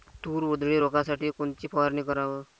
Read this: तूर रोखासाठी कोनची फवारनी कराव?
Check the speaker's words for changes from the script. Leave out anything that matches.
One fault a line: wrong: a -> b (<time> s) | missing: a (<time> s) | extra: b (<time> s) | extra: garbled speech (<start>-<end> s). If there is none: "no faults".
extra: उधळी (0.5 s)